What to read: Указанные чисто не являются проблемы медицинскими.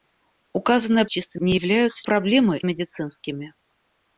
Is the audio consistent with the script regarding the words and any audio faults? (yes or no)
yes